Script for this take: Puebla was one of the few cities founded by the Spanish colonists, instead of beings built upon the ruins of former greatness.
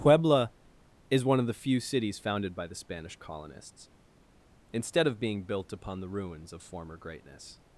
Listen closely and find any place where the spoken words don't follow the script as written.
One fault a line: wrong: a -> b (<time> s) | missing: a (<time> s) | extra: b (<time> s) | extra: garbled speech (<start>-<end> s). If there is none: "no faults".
wrong: was -> is (1.1 s)
wrong: beings -> being (5.2 s)